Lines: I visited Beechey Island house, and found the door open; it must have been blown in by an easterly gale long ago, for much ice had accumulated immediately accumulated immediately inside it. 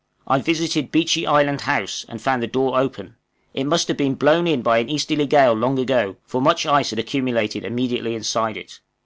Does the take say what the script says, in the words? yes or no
no